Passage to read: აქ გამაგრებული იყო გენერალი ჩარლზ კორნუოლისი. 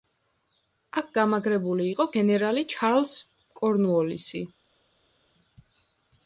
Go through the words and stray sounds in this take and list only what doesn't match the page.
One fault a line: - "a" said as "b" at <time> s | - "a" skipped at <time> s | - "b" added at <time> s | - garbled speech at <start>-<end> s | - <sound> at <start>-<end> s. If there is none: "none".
none